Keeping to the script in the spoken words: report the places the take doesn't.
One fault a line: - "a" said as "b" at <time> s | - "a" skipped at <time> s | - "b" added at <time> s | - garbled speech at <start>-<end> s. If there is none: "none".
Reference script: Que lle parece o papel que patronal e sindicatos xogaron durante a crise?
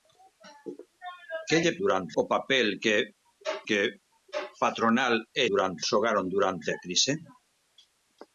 - "parece" said as "durante" at 1.8 s
- "que" added at 3.7 s
- "sindicatos" said as "durante" at 5.5 s